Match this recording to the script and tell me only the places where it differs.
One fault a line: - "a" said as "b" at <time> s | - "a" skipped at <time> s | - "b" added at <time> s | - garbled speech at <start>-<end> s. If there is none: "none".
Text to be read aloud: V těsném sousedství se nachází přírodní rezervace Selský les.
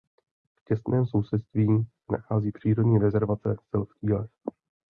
none